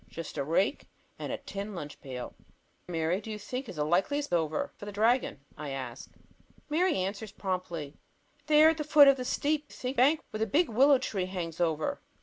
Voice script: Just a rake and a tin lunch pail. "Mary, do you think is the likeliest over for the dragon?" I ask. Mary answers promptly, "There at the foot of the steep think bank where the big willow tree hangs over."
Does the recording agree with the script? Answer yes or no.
yes